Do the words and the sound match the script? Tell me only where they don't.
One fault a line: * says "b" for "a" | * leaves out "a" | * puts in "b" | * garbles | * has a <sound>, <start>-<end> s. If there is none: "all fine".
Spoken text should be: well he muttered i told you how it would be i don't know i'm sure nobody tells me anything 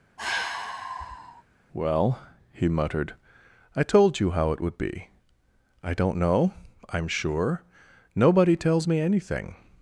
* has a sigh, 0.2-1.4 s